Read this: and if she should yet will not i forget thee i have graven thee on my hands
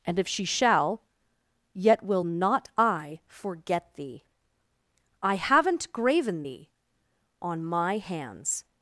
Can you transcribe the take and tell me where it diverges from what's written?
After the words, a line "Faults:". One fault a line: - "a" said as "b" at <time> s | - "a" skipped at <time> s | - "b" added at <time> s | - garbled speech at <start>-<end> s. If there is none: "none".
and if she shall yet will not i forget thee i haven't graven thee on my hands
Faults:
- "should" said as "shall" at 0.5 s
- "have" said as "haven't" at 5.4 s